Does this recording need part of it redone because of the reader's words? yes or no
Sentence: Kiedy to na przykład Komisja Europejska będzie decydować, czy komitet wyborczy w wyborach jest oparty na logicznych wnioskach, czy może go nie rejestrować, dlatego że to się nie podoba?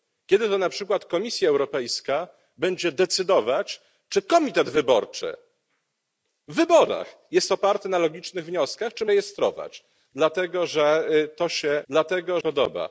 yes